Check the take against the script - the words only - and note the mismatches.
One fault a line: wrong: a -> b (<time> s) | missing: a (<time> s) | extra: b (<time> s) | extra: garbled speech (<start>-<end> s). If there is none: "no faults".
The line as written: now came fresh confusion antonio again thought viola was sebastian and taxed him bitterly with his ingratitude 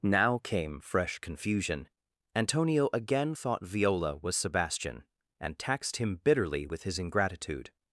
no faults